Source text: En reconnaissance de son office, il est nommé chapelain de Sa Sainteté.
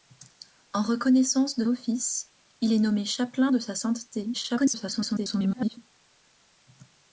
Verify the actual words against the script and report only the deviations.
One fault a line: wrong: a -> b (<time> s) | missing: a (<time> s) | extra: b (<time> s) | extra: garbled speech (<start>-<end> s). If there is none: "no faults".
missing: son (1.6 s)
extra: garbled speech (4.3-5.8 s)